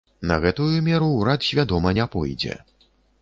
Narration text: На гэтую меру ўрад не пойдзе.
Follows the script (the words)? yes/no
no